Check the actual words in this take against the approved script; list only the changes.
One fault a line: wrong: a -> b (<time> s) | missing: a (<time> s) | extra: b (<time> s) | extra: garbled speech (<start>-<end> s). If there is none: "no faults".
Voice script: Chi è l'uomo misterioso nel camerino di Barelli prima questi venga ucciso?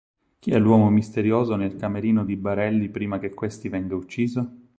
extra: che (3.2 s)